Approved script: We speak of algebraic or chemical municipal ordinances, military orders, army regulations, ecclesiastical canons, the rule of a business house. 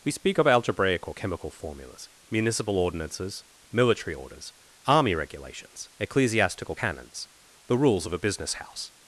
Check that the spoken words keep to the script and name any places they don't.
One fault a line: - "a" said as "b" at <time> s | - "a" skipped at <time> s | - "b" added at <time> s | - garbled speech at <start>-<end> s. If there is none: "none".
- "formulas" added at 1.5 s
- "rule" said as "rules" at 7.8 s